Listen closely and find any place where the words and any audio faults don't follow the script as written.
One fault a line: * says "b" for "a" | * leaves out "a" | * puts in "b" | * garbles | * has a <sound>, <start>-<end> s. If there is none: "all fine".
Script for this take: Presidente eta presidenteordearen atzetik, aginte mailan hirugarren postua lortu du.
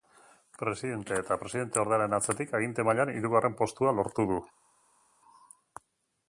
all fine